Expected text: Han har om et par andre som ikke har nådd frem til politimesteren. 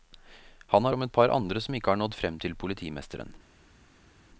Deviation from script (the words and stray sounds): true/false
false